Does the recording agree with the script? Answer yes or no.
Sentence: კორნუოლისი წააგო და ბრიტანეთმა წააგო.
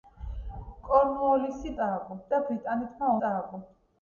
yes